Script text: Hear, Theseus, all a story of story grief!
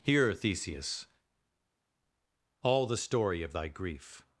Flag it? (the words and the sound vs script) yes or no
yes